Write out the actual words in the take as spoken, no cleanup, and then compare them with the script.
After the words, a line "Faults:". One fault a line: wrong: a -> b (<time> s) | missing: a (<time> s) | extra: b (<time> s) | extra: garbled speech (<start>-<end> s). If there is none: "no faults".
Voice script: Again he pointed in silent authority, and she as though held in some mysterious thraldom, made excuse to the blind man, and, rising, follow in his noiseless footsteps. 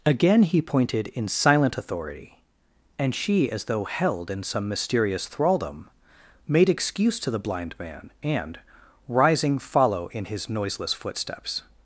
Again he pointed in silent authority, and she as though held in some mysterious thraldom, made excuse to the blind man, and, rising, follow in his noiseless footsteps.
Faults:
no faults